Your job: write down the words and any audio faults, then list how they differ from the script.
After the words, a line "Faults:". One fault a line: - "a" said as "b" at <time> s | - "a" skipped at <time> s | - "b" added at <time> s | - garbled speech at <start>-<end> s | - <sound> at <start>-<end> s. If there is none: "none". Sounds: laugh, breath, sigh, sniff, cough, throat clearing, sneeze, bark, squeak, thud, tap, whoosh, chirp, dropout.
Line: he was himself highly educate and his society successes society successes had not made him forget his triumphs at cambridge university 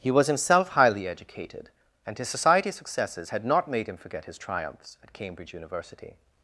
he was himself highly educated and his society successes had not made him forget his triumphs at cambridge university
Faults:
- "educate" said as "educated" at 1.1 s
- "society successes" skipped at 3.3 s